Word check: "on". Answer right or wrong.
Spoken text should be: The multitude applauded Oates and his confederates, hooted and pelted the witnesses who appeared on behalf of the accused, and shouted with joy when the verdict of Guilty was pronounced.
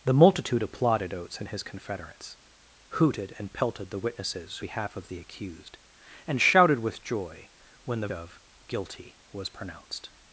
wrong